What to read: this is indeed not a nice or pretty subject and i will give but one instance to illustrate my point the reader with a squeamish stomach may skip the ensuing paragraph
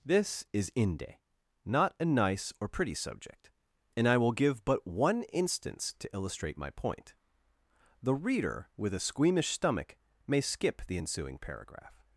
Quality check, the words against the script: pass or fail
fail